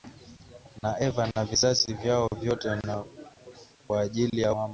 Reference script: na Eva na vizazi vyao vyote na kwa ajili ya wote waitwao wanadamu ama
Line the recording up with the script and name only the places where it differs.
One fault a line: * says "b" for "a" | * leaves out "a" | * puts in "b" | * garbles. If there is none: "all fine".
* leaves out "wote waitwao wanadamu"